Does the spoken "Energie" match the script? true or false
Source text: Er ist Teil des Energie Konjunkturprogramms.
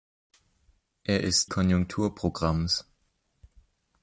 false